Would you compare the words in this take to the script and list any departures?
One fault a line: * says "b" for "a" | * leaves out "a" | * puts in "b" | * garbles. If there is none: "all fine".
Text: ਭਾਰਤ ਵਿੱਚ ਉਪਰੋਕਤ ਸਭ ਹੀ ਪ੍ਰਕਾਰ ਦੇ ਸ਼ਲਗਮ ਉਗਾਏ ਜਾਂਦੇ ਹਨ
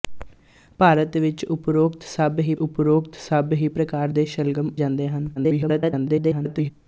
* puts in "ਉਪਰੋਕਤ ਸਭ ਹੀ"
* leaves out "ਉਗਾਏ"
* garbles